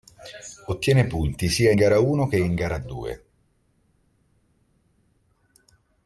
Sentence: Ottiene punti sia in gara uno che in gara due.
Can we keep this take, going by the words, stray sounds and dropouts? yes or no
no